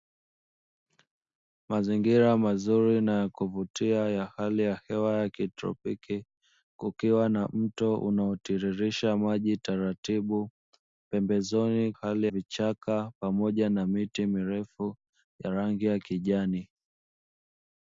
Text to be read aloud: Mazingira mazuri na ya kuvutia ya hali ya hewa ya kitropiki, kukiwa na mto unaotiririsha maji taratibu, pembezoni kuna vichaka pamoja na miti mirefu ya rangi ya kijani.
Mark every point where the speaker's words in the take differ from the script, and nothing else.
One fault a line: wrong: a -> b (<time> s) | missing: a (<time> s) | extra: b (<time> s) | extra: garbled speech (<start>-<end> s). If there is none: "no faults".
wrong: kuna -> hali (11.9 s)